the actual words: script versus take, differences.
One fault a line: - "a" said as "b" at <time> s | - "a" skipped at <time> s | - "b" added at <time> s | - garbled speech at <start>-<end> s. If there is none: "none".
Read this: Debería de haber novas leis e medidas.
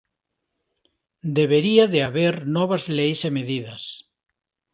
none